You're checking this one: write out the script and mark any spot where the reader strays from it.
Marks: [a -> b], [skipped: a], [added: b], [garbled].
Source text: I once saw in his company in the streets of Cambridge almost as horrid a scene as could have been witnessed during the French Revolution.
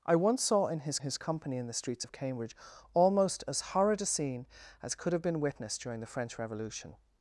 I once saw in his [added: his] company in the streets of Cambridge almost as horrid a scene as could have been witnessed during the French Revolution.